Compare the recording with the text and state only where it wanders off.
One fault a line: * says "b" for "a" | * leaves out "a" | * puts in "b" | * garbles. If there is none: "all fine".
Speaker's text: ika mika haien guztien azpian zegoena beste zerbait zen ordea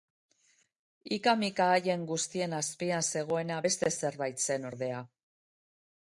all fine